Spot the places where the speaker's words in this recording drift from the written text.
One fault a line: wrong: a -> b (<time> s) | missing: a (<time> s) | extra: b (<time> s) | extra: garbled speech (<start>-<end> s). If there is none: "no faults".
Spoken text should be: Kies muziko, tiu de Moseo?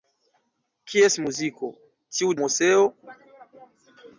missing: de (2.3 s)